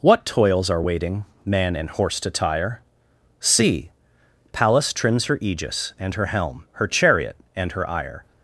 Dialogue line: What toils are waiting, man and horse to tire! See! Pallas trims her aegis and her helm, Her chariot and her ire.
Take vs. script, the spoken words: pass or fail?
pass